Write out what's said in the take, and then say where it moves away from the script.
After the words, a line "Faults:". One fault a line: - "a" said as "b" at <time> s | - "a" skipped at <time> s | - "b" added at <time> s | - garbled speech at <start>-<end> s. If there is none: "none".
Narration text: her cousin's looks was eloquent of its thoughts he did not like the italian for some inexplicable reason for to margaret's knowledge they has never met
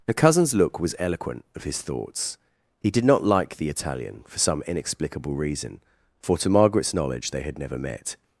her cousin's look was eloquent of his thoughts he did not like the italian for some inexplicable reason for to margaret's knowledge they had never met
Faults:
- "looks" said as "look" at 0.6 s
- "its" said as "his" at 1.6 s
- "has" said as "had" at 7.4 s